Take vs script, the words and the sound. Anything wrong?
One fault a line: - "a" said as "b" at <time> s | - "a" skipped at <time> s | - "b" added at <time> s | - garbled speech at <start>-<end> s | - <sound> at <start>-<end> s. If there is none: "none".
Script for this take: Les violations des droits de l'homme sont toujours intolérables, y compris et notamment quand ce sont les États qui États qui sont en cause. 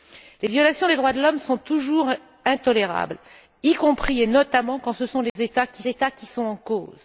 - dropout at 5.3-5.4 s